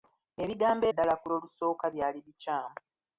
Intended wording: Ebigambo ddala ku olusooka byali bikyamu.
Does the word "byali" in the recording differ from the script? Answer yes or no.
no